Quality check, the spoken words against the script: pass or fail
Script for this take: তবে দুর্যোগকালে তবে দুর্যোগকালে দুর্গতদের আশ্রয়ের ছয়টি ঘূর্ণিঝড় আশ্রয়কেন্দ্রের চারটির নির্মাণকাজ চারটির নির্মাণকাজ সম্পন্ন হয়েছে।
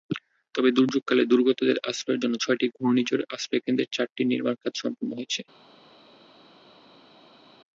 fail